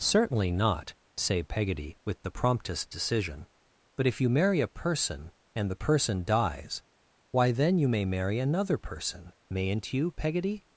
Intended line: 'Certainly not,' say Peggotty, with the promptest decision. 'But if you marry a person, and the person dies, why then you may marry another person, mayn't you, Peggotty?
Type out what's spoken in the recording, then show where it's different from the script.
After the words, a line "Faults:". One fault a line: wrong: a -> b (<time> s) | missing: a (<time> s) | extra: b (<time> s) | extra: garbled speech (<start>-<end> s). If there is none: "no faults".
'Certainly not,' say Peggotty, with the promptest decision. 'But if you marry a person, and the person dies, why then you may marry another person, mayn't you, Peggotty?
Faults:
no faults